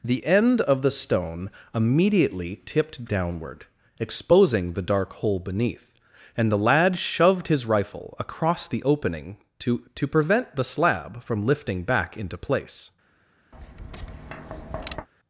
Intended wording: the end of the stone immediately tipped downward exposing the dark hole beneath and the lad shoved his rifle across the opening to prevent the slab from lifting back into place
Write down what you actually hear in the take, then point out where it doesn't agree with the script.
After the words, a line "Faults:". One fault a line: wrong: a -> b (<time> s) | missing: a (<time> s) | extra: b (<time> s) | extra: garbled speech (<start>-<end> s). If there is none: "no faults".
the end of the stone immediately tipped downward exposing the dark hole beneath and the lad shoved his rifle across the opening to to prevent the slab from lifting back into place
Faults:
extra: to (10.0 s)